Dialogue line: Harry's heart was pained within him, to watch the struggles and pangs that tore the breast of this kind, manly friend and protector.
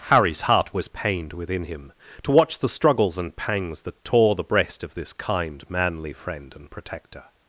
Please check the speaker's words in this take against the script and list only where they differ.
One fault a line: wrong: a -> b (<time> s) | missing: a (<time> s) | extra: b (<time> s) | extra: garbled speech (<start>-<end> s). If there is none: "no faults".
no faults